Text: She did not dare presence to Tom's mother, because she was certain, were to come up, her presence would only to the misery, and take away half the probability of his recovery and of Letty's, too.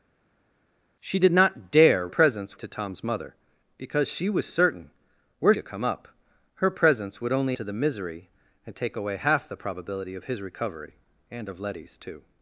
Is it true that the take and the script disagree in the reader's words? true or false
false